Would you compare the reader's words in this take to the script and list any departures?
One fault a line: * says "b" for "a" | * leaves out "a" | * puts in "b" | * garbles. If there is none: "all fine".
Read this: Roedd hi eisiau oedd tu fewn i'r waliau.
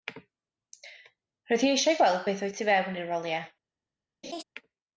* puts in "gweld beth"